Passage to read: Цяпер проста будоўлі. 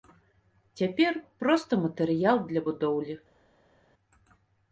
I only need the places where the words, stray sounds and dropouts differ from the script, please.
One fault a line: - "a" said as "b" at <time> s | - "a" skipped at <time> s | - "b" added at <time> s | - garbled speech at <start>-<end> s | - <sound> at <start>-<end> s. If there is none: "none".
- "матэрыял для" added at 1.8 s